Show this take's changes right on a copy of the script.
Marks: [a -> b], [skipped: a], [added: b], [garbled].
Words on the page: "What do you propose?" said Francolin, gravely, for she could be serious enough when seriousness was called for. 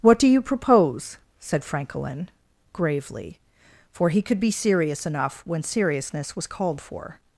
"What do you propose?" said Francolin, gravely, for [she -> he] could be serious enough when seriousness was called for.